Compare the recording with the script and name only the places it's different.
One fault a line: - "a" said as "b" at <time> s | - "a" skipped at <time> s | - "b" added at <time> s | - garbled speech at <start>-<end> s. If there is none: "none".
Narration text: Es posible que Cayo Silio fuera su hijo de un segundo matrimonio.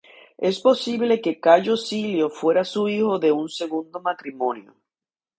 none